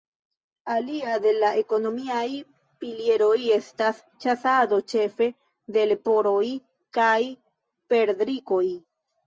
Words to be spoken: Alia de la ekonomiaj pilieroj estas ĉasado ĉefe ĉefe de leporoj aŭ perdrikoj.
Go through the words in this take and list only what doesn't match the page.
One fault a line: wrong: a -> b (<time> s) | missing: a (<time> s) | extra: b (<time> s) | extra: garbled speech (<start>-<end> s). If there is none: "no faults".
missing: ĉefe (5.3 s)
wrong: aŭ -> kaj (7.0 s)